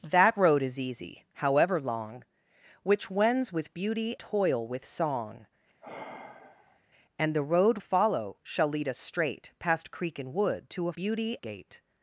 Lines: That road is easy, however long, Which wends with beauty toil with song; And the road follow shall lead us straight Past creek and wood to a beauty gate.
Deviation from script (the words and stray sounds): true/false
true